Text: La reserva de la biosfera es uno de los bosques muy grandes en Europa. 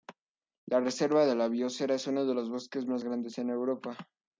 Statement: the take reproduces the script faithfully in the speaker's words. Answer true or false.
false